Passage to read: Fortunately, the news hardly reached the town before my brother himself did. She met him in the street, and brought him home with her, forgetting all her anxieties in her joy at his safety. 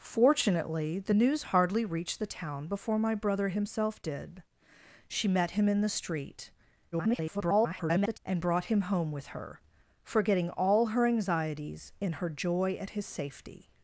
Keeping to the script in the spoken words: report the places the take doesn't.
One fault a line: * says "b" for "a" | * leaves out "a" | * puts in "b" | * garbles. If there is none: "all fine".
* garbles